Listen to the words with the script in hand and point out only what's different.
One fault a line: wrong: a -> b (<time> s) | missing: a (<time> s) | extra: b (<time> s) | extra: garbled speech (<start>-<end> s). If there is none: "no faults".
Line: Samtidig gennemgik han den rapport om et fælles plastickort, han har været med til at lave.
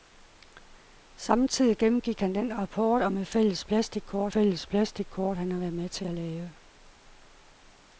extra: fælles plastickort (4.3 s)